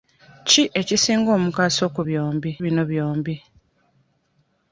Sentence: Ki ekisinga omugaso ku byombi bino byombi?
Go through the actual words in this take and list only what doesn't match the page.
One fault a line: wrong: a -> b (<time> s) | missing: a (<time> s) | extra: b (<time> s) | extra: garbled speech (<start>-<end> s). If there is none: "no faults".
no faults